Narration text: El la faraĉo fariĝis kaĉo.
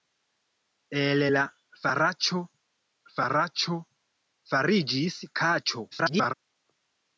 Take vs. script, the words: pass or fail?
fail